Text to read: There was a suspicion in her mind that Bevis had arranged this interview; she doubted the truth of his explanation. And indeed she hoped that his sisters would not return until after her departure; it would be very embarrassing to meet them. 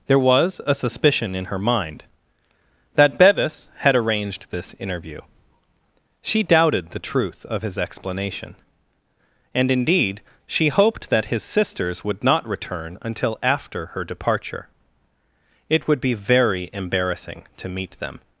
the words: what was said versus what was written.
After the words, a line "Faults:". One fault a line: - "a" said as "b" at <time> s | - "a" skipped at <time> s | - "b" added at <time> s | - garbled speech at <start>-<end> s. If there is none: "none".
There was a suspicion in her mind that Bevis had arranged this interview; she doubted the truth of his explanation. And indeed she hoped that his sisters would not return until after her departure; it would be very embarrassing to meet them.
Faults:
none